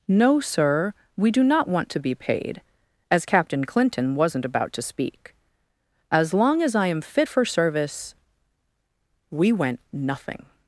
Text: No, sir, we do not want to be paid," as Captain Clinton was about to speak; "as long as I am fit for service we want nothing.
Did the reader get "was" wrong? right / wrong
wrong